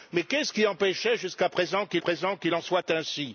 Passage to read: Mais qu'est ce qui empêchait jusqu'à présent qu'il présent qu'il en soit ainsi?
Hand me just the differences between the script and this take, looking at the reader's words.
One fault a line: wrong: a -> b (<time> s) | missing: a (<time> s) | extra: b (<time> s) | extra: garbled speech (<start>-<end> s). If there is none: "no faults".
no faults